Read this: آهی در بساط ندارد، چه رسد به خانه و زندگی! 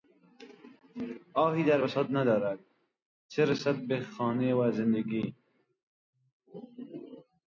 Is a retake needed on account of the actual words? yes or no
no